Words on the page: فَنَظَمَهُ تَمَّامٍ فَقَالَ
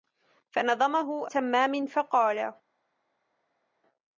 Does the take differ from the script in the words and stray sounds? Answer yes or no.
no